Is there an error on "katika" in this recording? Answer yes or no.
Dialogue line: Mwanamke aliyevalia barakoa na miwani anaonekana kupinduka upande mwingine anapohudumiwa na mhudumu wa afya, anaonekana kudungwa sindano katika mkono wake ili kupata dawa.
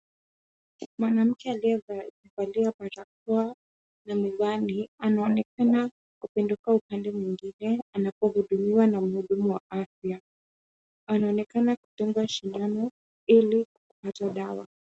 yes